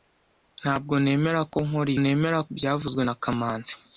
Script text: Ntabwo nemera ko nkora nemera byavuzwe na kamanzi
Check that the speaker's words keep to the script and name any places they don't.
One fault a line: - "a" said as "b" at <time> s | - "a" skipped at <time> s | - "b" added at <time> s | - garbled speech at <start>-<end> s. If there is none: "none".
none